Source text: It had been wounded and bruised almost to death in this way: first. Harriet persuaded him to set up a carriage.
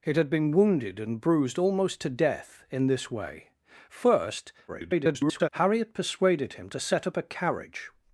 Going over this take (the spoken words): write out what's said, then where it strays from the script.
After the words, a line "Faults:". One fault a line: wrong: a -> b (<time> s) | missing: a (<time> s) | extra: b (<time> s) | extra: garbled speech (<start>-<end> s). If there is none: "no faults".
It had been wounded and bruised almost to death in this way: first. [garbled] Harriet persuaded him to set up a carriage.
Faults:
extra: garbled speech (4.7-5.5 s)